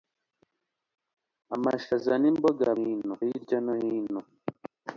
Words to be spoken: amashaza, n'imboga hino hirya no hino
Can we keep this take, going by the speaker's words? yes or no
yes